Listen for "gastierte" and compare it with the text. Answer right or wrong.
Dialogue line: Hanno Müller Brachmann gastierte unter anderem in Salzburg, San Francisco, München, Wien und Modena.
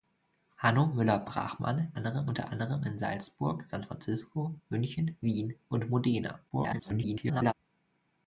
wrong